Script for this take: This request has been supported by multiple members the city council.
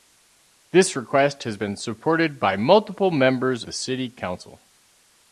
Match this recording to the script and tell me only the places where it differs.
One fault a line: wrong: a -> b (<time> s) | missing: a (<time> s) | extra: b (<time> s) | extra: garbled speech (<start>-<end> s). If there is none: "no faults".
no faults